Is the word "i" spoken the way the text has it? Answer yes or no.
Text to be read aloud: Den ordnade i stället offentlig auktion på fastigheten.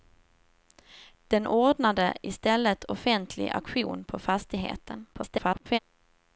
yes